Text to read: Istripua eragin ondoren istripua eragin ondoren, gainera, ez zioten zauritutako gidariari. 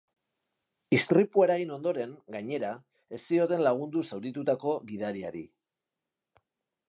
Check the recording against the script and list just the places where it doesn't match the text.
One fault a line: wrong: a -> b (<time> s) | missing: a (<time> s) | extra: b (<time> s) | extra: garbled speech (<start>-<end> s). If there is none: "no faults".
missing: istripua eragin ondoren (2.1 s)
extra: lagundu (3.7 s)